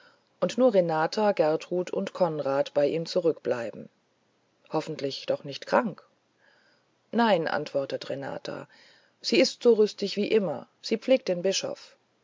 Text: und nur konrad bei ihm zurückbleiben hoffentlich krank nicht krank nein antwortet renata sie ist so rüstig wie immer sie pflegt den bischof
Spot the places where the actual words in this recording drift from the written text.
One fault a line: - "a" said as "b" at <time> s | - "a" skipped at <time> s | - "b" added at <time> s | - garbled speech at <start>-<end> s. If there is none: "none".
- "renata gertrud und" added at 0.7 s
- "krank" said as "doch" at 5.3 s